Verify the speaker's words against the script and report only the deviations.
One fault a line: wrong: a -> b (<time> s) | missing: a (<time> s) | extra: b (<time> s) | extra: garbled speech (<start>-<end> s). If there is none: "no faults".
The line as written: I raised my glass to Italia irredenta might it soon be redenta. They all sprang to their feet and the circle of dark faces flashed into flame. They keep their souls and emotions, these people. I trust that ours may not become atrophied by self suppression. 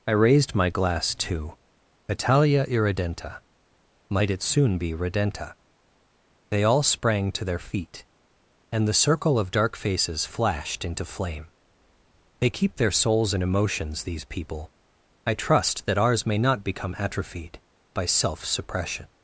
no faults